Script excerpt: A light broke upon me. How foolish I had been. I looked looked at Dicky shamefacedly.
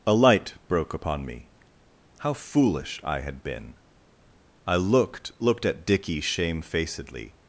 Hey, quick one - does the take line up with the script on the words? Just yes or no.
yes